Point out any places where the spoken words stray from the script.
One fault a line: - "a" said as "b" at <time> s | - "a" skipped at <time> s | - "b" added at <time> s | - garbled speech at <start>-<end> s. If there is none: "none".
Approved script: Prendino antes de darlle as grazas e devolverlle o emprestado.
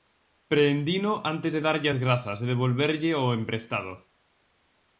none